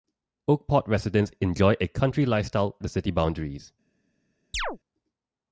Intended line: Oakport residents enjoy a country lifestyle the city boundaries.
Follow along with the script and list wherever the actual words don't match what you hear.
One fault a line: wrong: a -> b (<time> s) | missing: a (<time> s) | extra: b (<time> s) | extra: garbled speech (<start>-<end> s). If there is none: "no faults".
no faults